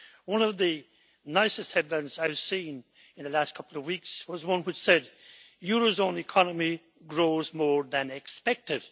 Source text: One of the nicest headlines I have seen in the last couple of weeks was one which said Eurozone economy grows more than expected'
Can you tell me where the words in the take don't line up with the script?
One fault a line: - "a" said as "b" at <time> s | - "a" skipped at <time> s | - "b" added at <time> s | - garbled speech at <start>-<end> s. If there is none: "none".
none